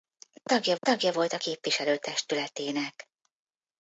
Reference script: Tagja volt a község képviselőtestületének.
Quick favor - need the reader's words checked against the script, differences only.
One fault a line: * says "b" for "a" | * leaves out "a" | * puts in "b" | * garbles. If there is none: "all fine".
* puts in "tagja"
* leaves out "község"